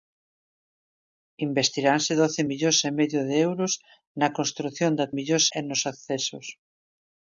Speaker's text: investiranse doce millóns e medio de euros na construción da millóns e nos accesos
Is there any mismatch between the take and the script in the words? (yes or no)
no